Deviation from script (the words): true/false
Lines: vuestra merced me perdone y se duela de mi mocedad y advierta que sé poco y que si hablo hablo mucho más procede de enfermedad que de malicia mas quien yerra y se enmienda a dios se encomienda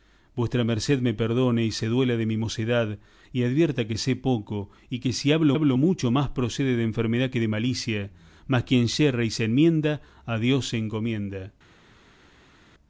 false